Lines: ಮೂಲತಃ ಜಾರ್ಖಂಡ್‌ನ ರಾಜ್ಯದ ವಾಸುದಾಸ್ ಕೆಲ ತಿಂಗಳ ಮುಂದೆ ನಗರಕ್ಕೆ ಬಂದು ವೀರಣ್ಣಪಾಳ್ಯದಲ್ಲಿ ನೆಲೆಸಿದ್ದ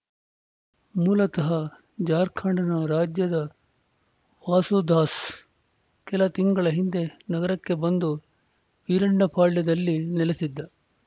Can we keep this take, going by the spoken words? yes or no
no